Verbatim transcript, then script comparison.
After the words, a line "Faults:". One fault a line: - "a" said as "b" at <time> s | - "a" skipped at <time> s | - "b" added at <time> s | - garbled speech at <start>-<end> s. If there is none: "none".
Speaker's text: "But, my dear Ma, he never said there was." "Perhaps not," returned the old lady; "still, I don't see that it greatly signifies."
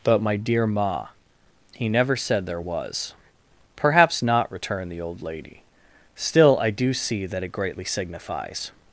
"But, my dear Ma, he never said there was." "Perhaps not," returned the old lady; "still, I do see that it greatly signifies."
Faults:
- "don't" said as "do" at 6.7 s